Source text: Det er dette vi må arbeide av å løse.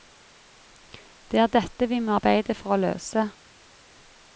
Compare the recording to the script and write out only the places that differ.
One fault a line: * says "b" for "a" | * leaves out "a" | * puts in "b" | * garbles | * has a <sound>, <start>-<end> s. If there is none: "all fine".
* says "for" for "av"